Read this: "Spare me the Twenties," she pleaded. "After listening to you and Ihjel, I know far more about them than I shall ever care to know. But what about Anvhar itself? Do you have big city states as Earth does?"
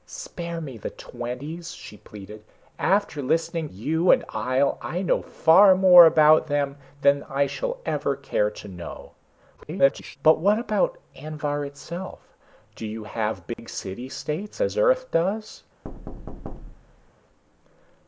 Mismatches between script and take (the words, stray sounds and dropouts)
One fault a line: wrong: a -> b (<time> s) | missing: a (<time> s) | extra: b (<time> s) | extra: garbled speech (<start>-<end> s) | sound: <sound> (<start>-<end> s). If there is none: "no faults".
missing: to (3.7 s)
extra: garbled speech (9.6-10.2 s)
sound: dropout (13.5-13.6 s)
sound: thud (15.8-17.1 s)